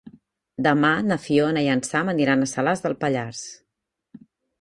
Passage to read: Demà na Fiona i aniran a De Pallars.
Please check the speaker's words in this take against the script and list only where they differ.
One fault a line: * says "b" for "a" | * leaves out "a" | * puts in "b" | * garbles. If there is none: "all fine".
* puts in "en Sam"
* puts in "Salàs"